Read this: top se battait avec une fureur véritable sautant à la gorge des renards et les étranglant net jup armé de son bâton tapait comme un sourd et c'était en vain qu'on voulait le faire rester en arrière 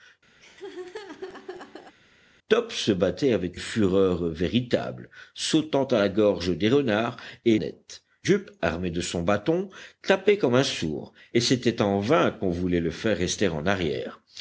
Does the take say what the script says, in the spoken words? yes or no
no